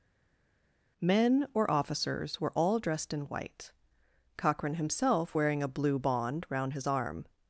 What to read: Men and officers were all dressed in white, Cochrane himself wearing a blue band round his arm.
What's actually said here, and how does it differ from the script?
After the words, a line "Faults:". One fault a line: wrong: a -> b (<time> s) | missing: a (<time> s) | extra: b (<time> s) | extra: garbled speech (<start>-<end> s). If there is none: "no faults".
Men or officers were all dressed in white, Cochrane himself wearing a blue bond round his arm.
Faults:
wrong: and -> or (1.5 s)
wrong: band -> bond (6.0 s)